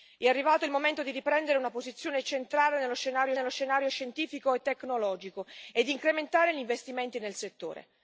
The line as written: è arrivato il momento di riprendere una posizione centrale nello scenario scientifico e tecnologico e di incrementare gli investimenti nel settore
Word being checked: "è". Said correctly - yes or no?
yes